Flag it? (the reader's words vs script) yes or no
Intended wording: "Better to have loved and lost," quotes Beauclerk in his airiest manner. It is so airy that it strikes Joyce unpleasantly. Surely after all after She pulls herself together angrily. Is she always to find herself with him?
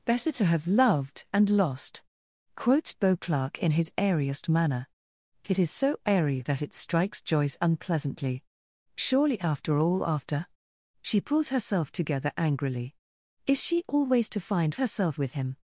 no